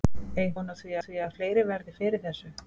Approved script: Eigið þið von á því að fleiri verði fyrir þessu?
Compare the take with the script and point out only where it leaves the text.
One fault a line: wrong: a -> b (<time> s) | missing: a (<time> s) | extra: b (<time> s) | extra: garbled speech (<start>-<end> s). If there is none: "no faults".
missing: þið (0.6 s)
extra: því (1.1 s)